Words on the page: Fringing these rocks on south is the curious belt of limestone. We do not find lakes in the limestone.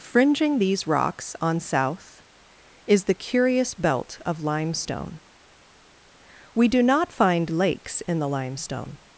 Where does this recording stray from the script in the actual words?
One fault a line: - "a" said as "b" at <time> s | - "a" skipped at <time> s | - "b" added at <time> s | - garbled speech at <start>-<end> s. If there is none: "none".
none